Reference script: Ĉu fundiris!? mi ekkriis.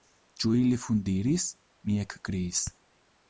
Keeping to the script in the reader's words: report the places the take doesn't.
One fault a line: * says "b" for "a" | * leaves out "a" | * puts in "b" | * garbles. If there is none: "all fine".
* puts in "ili"